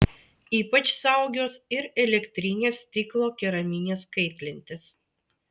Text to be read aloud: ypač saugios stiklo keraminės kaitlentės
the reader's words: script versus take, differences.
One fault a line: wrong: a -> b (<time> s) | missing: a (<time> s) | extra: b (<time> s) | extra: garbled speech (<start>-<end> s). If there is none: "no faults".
extra: ir elektrinės (1.8 s)